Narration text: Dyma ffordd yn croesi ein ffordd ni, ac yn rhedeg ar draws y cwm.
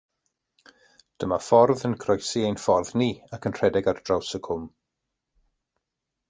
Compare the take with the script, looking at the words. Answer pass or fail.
pass